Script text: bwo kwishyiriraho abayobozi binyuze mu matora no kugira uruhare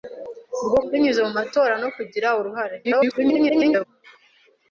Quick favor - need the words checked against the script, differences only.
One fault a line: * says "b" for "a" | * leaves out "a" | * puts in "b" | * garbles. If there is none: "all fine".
* leaves out "kwishyiriraho abayobozi"
* garbles